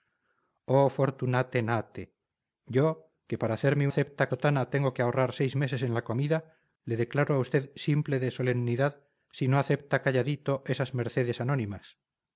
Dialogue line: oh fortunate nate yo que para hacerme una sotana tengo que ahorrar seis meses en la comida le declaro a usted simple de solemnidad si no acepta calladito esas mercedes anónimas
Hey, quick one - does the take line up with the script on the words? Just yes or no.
no